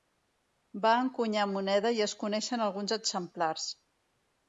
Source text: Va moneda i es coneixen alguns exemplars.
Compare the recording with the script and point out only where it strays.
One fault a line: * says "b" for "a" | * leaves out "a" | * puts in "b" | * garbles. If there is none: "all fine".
* puts in "encunyar"